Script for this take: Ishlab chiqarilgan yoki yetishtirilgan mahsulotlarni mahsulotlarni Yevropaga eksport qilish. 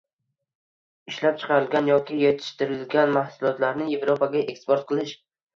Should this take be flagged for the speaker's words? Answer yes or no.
yes